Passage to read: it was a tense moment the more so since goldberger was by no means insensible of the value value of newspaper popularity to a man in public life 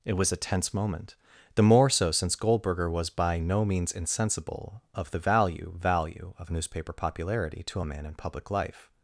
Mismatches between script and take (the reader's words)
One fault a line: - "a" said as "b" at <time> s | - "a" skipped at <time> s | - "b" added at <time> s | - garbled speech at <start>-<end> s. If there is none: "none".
none